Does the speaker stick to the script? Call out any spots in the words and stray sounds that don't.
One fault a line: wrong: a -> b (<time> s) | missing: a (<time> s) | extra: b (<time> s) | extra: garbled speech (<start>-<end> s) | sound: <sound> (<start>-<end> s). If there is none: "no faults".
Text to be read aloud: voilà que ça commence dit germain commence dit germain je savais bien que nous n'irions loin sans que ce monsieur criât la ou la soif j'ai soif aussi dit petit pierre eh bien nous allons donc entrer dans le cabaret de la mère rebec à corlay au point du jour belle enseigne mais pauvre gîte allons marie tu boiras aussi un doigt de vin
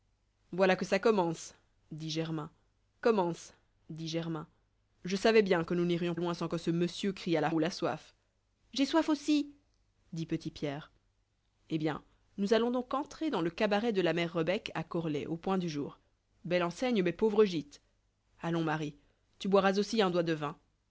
no faults